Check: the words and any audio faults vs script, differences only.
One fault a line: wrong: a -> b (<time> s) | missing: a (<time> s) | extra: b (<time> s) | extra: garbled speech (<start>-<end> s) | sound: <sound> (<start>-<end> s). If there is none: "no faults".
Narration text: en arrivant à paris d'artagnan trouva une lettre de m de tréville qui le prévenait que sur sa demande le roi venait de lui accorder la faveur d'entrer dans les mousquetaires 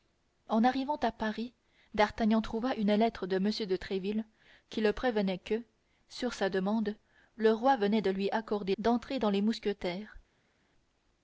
missing: la faveur (8.7 s)